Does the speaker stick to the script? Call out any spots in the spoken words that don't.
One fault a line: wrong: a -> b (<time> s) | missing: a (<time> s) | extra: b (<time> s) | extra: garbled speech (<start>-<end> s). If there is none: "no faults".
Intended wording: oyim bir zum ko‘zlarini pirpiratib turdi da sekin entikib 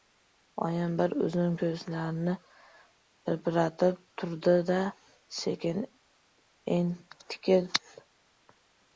no faults